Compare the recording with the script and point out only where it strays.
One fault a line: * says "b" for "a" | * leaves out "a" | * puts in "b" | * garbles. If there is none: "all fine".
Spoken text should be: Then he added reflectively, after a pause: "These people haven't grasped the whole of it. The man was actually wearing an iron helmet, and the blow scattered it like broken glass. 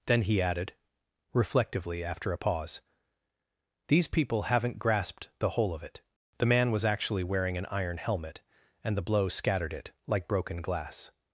all fine